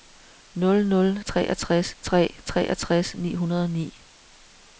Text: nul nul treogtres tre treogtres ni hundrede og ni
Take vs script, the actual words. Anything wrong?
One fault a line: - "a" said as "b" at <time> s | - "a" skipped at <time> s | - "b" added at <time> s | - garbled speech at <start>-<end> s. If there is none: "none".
none